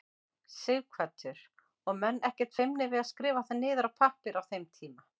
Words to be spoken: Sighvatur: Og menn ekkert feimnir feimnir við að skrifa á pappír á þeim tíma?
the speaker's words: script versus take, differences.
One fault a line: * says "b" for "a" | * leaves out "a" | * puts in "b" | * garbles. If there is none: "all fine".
* leaves out "feimnir"
* puts in "það niður"